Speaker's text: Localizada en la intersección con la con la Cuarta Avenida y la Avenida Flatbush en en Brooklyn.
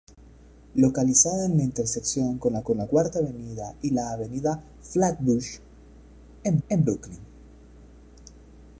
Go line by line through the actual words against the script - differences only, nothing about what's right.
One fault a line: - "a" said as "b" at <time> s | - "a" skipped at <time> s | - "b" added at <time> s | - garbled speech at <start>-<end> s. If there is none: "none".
none